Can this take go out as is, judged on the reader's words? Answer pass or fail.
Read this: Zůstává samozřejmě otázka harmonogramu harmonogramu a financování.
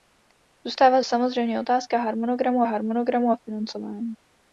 pass